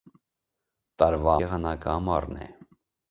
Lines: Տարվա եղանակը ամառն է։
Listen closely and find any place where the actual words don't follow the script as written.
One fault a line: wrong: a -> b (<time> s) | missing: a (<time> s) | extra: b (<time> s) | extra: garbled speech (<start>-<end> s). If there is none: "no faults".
no faults